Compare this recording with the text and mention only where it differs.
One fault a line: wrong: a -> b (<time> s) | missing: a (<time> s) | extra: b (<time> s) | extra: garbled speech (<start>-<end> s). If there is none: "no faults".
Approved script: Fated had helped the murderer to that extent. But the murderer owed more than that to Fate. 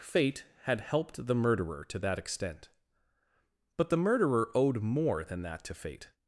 wrong: Fated -> Fate (0.0 s)